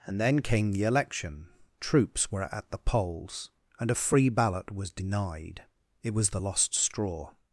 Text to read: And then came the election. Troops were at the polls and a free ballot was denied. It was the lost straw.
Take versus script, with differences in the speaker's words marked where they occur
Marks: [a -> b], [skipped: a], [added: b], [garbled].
And then came the election. Troops were at the polls and a free ballot was denied. It was the lost straw.